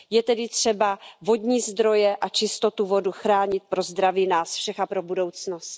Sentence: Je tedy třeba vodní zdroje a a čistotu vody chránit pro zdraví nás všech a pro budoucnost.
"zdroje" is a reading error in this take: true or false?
false